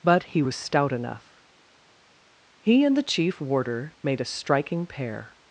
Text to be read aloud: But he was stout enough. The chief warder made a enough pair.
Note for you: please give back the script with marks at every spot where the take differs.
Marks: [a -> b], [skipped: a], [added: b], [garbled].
But he was stout enough. [added: He and] The chief warder made a [enough -> striking] pair.